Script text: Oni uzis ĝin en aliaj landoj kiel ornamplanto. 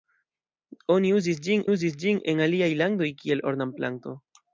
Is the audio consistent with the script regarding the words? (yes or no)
no